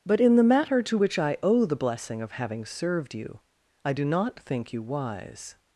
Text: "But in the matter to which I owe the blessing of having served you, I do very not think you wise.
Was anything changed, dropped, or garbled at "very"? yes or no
yes